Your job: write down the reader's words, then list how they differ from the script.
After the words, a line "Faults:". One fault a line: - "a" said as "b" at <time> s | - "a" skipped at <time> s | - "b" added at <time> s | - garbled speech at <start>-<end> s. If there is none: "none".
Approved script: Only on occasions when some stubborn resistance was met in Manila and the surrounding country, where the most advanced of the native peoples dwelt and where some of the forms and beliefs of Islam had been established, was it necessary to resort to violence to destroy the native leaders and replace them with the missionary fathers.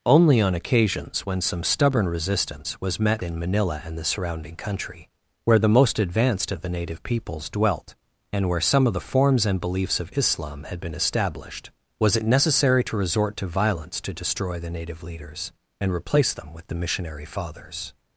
Only on occasions when some stubborn resistance was met in Manila and the surrounding country, where the most advanced of the native peoples dwelt and where some of the forms and beliefs of Islam had been established, was it necessary to resort to violence to destroy the native leaders and replace them with the missionary fathers.
Faults:
none